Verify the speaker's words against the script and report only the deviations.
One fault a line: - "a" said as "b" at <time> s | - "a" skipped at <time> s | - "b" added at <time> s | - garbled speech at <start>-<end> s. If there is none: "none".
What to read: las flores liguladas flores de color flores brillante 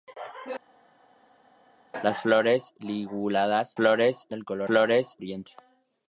none